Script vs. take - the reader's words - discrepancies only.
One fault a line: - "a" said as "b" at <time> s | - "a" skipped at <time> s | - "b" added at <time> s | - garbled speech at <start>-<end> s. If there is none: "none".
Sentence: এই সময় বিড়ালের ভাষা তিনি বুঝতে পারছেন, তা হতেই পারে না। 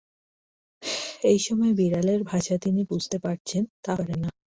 - "হতেই" skipped at 3.9 s